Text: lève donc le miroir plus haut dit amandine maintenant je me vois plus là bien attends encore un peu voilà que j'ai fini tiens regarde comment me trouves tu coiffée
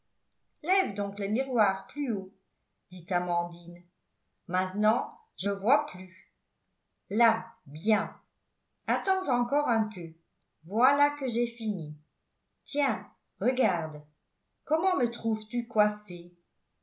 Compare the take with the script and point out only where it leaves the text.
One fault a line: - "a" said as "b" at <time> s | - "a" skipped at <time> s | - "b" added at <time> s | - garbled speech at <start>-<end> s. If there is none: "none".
none